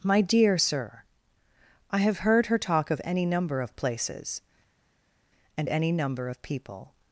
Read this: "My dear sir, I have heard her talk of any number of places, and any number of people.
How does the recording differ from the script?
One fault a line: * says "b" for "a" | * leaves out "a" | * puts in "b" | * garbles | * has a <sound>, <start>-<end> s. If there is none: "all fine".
all fine